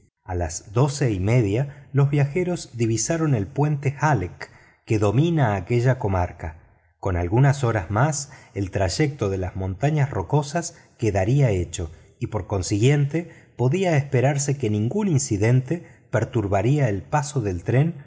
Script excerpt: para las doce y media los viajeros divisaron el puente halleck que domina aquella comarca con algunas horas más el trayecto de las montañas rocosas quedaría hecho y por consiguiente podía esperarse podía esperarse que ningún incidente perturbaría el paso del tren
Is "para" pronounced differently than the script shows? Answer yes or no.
yes